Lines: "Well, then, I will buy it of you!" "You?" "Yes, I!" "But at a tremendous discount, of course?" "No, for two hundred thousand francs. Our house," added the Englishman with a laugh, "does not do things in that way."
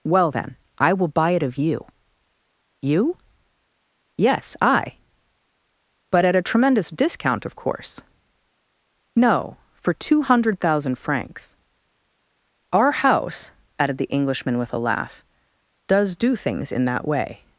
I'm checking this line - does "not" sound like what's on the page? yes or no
no